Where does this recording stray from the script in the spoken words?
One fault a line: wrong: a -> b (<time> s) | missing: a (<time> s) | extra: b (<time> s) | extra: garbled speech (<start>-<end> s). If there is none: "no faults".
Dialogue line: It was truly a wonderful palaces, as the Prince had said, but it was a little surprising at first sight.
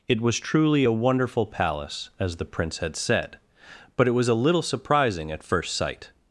wrong: palaces -> palace (1.5 s)